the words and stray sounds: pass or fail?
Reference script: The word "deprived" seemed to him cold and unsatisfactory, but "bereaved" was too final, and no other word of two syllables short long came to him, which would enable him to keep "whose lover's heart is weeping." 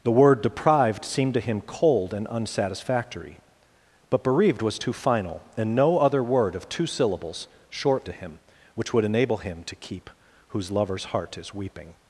fail